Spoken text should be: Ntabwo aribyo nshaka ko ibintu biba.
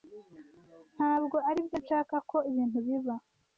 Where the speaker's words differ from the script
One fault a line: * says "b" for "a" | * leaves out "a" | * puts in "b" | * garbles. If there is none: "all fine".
all fine